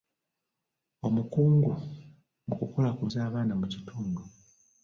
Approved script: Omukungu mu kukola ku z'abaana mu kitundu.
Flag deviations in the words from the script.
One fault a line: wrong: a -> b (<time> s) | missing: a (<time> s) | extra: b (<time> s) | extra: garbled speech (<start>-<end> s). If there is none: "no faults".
no faults